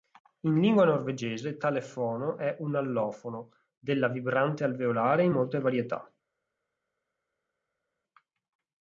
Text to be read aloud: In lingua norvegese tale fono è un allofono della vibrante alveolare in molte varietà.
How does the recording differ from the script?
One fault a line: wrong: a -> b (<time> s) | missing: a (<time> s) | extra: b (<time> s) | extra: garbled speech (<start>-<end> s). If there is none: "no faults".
no faults